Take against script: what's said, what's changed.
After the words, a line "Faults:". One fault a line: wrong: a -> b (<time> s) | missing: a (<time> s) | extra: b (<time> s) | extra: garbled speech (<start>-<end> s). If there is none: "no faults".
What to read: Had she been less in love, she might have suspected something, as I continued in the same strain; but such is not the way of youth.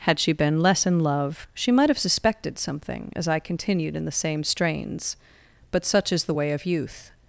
Had she been less in love, she might have suspected something, as I continued in the same strains; but such is the way of youth.
Faults:
wrong: strain -> strains (4.4 s)
missing: not (6.2 s)